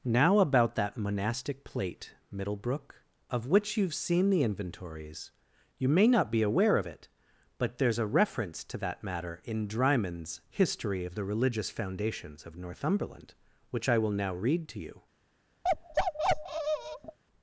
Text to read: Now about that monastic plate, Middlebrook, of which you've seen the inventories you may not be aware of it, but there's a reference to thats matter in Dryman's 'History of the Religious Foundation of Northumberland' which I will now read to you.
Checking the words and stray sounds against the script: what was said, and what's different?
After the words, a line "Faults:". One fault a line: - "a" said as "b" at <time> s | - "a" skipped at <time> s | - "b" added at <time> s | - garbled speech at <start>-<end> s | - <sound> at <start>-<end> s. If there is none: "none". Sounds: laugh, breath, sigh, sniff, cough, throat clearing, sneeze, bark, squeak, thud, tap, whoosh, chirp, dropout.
Now about that monastic plate, Middlebrook, of which you've seen the inventories you may not be aware of it, but there's a reference to that matter in Dryman's 'History of the Religious Foundations of Northumberland' which I will now read to you.
Faults:
- "thats" said as "that" at 8.8 s
- "Foundation" said as "Foundations" at 11.7 s
- bark at 15.6-17.2 s